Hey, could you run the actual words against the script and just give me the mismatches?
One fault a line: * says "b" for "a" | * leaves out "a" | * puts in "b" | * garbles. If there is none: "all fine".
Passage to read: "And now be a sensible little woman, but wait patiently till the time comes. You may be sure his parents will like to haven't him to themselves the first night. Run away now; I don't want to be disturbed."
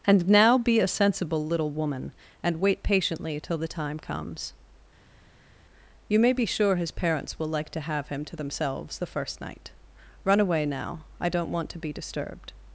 * says "and" for "but"
* says "have" for "haven't"